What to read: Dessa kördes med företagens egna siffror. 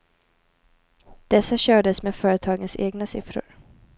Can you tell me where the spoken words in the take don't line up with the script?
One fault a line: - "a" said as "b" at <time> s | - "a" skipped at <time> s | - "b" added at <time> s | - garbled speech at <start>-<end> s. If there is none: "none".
none